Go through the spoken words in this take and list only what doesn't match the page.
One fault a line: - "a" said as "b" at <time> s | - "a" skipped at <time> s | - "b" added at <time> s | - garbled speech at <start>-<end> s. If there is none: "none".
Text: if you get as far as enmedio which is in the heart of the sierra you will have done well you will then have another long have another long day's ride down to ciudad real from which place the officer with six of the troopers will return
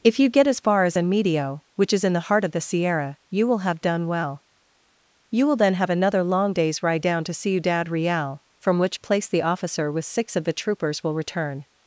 - "have another long" skipped at 6.5 s